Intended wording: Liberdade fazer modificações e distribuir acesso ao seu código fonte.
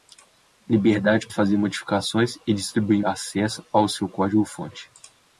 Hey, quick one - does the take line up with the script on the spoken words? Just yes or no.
yes